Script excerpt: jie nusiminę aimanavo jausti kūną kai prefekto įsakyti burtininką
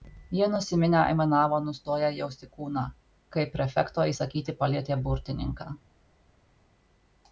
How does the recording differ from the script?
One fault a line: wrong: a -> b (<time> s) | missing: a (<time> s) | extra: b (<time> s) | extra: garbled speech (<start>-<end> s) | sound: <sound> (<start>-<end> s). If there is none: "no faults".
extra: nustoję (1.6 s)
extra: palietė (4.6 s)